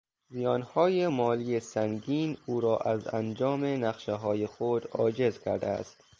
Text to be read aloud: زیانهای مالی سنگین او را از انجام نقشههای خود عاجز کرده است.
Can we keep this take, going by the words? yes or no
yes